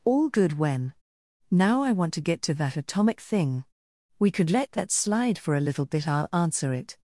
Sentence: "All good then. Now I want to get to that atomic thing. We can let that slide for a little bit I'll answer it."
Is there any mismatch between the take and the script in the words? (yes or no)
yes